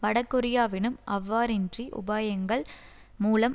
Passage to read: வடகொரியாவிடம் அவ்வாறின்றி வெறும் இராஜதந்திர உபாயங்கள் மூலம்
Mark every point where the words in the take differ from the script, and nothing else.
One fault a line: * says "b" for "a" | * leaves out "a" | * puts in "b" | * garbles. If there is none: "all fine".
* leaves out "வெறும் இராஜதந்திர"